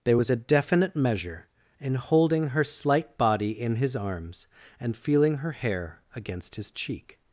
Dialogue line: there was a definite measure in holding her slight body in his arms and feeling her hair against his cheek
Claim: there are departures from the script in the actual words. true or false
false